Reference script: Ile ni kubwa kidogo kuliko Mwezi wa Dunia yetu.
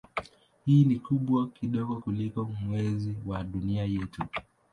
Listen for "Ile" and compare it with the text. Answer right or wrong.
wrong